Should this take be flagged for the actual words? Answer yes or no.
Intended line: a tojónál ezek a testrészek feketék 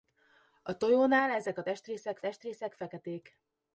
yes